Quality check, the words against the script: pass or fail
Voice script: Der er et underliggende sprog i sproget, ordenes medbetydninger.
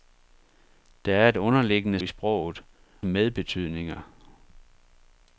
fail